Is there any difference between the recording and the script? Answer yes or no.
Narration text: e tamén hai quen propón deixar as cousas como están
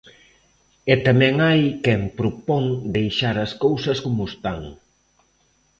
no